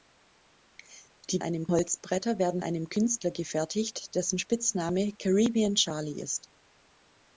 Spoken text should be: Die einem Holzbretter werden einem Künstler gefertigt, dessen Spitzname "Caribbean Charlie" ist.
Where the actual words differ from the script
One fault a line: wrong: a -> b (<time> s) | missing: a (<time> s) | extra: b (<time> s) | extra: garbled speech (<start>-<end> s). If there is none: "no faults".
no faults